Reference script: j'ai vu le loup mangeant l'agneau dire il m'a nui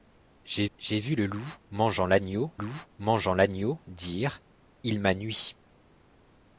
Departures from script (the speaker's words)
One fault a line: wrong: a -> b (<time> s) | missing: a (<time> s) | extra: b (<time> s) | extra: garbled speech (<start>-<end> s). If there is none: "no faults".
extra: j'ai (0.7 s)
extra: loup mangeant l'agneau (2.5 s)